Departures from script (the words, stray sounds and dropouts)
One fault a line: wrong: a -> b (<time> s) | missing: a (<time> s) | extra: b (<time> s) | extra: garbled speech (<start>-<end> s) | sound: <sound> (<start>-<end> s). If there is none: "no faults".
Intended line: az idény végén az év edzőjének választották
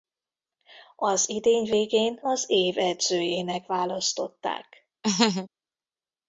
sound: laugh (5.0-5.5 s)